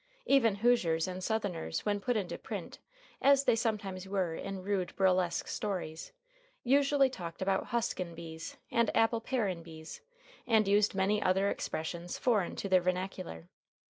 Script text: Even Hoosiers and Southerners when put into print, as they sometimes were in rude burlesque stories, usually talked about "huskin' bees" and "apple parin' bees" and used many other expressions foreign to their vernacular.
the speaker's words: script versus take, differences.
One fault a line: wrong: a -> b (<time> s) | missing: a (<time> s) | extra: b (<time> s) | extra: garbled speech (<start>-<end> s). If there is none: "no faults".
no faults